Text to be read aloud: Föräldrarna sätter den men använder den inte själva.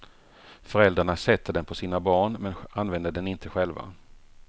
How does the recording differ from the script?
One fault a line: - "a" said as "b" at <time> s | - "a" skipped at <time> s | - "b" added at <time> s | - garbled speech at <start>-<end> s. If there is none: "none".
- "på sina barn" added at 1.6 s